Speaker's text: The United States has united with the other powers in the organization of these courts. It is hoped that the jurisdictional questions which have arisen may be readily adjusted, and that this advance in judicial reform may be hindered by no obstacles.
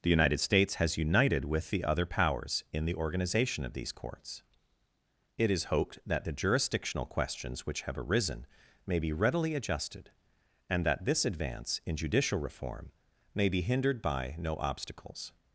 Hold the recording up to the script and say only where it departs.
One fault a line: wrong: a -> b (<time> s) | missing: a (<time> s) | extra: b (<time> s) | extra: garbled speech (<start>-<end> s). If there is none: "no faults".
no faults